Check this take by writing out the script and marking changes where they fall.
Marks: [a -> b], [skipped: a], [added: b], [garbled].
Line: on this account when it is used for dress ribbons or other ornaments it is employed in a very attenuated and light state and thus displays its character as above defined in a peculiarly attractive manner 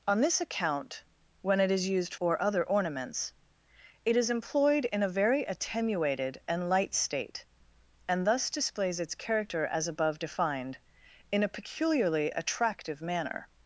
on this account when it is used [skipped: for dress ribbons] or other ornaments it is employed in a very attenuated and light state and thus displays its character as above defined in a peculiarly attractive manner